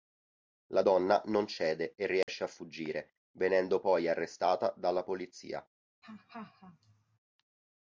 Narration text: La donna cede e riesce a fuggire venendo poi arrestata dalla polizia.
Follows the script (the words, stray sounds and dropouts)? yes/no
no